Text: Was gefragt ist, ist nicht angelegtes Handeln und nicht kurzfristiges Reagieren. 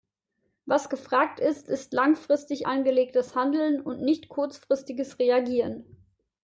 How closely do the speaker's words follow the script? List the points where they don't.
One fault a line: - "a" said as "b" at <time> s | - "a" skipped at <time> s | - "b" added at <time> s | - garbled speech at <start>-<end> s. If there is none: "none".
- "nicht" said as "langfristig" at 1.9 s